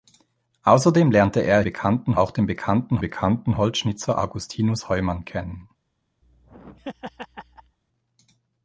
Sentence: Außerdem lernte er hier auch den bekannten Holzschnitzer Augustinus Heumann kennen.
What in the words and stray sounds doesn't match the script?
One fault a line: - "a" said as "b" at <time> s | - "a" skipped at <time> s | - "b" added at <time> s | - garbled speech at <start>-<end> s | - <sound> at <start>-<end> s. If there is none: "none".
- "hier" said as "bekannten" at 1.6 s
- "bekannten" added at 3.0 s
- laugh at 6.2-7.8 s